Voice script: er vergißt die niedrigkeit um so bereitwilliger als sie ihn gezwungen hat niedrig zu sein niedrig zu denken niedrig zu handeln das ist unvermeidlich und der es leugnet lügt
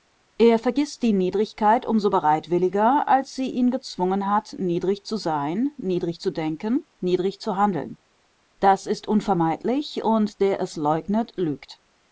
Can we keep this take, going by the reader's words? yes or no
yes